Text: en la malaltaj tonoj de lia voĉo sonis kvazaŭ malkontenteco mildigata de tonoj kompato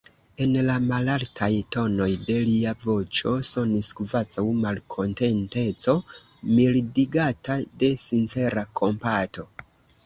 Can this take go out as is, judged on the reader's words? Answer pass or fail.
fail